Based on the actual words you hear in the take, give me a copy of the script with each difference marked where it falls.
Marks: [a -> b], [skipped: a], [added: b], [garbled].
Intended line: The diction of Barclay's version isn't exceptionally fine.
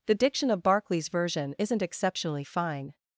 The diction of Barclay's version isn't exceptionally fine.